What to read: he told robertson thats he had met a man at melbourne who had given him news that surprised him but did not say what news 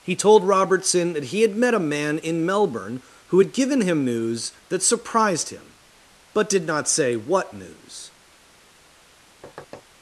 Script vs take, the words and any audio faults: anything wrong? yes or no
yes